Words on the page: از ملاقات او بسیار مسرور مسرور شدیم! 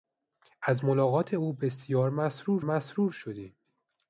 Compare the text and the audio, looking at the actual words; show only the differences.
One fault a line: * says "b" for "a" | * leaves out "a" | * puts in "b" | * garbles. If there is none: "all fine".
all fine